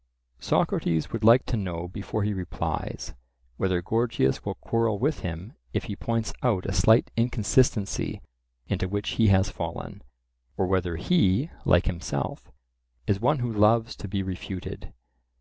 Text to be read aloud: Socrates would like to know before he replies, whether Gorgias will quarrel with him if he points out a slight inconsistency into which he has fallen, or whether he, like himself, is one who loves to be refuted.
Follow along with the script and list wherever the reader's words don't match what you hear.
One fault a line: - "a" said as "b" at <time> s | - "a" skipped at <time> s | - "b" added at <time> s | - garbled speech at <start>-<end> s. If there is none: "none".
none